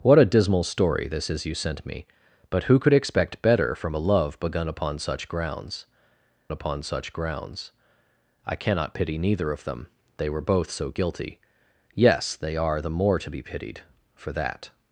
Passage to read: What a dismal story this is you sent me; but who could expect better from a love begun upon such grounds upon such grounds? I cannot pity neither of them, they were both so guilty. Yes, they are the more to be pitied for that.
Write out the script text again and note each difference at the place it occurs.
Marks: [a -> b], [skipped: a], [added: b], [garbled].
What a dismal story this is you sent me; but who could expect better from a love begun upon such grounds upon such grounds? I cannot pity neither of them, they were both so guilty. Yes, they are the more to be pitied for that.